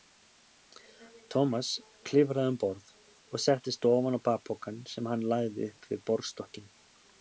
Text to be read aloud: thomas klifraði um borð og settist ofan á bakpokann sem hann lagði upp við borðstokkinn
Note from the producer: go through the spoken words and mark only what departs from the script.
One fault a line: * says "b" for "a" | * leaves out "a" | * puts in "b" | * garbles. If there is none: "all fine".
all fine